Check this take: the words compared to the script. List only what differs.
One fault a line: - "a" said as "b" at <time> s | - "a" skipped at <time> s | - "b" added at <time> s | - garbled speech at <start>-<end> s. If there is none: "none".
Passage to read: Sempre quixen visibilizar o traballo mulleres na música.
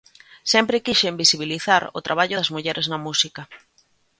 - "das" added at 2.3 s